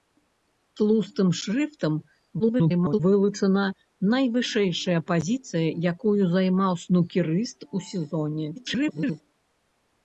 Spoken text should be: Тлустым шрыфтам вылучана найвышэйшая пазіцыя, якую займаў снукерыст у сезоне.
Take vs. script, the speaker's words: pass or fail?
fail